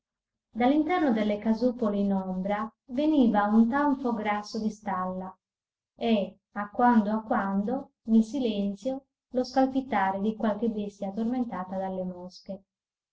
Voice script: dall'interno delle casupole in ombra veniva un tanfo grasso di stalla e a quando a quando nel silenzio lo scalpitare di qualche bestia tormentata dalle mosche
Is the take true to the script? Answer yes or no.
yes